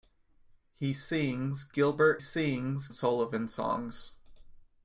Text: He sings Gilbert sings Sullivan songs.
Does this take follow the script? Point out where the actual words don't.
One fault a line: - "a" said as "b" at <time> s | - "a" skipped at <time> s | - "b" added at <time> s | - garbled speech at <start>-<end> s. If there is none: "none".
none